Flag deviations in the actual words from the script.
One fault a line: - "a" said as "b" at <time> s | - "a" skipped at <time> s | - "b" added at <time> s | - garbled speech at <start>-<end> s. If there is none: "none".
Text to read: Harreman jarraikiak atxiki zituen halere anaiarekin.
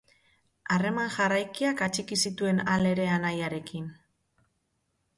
none